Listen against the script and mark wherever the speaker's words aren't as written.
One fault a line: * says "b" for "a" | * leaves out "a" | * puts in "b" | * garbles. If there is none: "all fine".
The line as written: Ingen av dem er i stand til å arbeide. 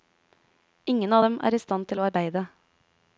all fine